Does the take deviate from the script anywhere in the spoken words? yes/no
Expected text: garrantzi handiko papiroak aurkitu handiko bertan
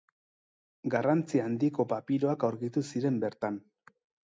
yes